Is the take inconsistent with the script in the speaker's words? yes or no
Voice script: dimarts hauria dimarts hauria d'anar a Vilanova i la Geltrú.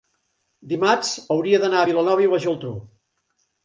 yes